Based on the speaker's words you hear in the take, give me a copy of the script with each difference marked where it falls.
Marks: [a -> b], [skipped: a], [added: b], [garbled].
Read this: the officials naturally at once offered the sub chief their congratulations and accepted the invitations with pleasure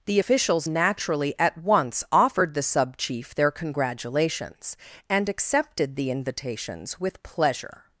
the officials naturally at once offered the sub chief their congratulations and accepted the invitations with pleasure